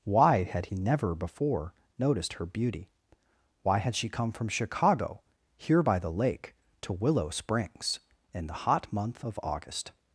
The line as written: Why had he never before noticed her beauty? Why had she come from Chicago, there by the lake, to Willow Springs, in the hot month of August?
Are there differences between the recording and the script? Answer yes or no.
yes